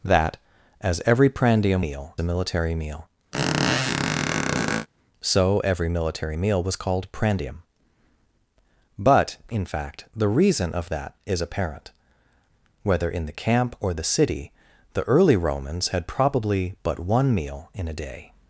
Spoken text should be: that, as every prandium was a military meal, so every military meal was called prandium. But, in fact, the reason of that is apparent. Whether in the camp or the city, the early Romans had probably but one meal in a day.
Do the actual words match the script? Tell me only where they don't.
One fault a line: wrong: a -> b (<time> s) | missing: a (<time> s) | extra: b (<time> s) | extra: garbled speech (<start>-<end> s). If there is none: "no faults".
wrong: was -> meal (1.8 s)